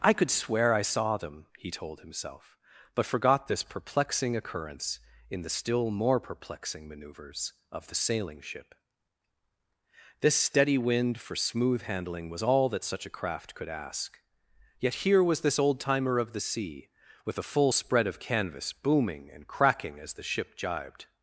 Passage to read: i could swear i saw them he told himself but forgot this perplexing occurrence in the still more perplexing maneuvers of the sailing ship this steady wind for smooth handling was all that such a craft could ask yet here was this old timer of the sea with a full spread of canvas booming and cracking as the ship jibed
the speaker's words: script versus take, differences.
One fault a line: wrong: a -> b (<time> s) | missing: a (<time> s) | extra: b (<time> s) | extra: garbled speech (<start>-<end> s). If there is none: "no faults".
no faults